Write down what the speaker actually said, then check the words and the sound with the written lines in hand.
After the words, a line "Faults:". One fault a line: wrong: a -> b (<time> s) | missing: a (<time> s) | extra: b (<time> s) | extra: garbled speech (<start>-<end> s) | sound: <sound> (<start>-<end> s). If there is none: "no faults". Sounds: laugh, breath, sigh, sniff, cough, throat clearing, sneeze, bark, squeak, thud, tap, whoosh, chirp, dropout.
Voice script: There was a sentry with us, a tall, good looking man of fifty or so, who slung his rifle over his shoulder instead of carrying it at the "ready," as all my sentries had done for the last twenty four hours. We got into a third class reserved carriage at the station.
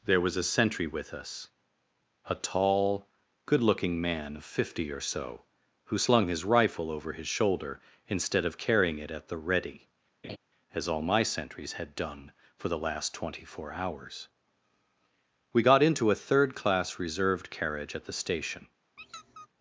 There was a sentry with us, a tall, good looking man of fifty or so, who slung his rifle over his shoulder instead of carrying it at the "ready," as all my sentries had done for the last twenty four hours. We got into a third class reserved carriage at the station.
Faults:
sound: laugh (10.2-10.4 s)
sound: squeak (19.0-19.5 s)